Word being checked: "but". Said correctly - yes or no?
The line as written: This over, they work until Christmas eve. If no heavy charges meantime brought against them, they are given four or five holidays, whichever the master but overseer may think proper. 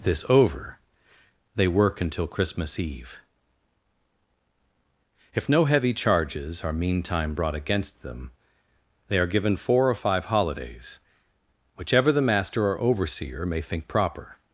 no